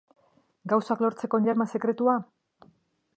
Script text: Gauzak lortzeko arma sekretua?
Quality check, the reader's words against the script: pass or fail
fail